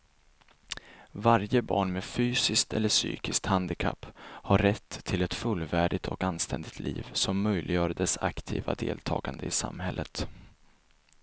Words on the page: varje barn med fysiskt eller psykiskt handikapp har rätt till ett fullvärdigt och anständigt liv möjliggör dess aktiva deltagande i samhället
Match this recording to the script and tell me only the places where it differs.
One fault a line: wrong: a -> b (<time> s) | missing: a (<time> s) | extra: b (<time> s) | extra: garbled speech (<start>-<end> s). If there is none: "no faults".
extra: som (7.1 s)